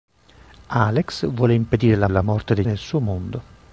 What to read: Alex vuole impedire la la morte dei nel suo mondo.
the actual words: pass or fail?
pass